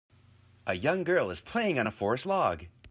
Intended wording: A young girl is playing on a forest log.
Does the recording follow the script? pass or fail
pass